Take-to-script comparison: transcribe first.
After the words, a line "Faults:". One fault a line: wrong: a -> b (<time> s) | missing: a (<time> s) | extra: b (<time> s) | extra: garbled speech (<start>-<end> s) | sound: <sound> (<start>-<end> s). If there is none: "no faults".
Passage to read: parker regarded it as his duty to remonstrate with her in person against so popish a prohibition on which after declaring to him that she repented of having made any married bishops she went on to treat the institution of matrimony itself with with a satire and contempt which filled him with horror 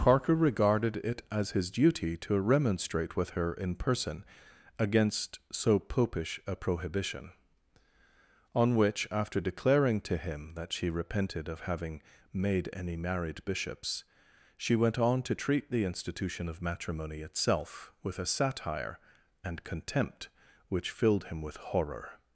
parker regarded it as his duty to remonstrate with her in person against so popish a prohibition on which after declaring to him that she repented of having made any married bishops she went on to treat the institution of matrimony itself with a satire and contempt which filled him with horror
Faults:
missing: with (18.2 s)